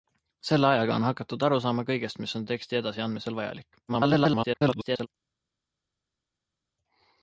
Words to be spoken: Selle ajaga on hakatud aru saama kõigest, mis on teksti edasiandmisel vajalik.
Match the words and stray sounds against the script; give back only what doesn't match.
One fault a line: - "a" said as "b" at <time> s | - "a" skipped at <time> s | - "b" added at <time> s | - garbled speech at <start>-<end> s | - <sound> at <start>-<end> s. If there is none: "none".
- garbled speech at 3.9-5.1 s